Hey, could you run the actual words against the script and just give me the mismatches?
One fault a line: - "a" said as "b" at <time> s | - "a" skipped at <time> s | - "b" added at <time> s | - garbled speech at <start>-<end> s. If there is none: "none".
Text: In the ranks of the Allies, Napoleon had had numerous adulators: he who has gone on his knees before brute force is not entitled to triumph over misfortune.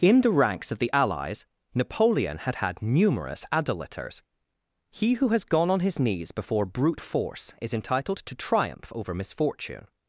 - "not" skipped at 7.7 s